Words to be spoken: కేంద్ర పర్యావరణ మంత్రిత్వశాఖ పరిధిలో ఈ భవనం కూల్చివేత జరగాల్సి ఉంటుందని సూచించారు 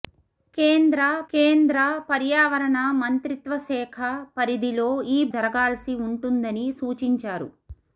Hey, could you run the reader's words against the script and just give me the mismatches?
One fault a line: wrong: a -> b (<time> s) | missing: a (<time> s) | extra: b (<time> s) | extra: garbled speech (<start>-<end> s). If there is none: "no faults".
extra: కేంద్ర (1.3 s)
missing: భవనం కూల్చివేత (5.2 s)